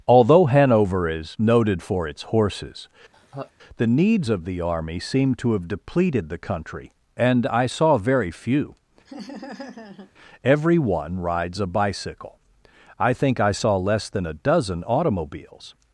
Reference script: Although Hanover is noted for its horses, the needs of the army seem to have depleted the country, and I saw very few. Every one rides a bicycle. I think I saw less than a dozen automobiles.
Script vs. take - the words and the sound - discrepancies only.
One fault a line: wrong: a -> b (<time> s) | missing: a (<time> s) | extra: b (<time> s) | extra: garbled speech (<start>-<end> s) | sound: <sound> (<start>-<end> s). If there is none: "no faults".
sound: laugh (3.1-3.5 s)
sound: laugh (9.1-10.1 s)